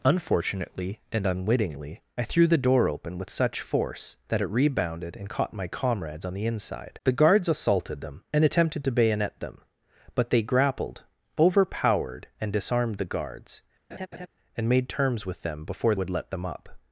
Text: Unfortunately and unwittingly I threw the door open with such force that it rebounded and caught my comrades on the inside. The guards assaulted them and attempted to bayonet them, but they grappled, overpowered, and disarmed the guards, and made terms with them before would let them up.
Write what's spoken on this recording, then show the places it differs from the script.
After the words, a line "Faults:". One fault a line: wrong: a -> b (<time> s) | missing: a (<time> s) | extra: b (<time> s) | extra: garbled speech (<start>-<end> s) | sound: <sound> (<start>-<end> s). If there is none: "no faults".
Unfortunately and unwittingly I threw the door open with such force that it rebounded and caught my comrades on the inside. The guards assaulted them and attempted to bayonet them, but they grappled, overpowered, and disarmed the guards, and made terms with them before would let them up.
Faults:
sound: laugh (13.9-14.3 s)